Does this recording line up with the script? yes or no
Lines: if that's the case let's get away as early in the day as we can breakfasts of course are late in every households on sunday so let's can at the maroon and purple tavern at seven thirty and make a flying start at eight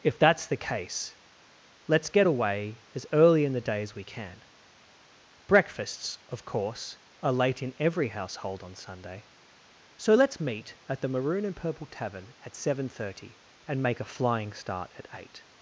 no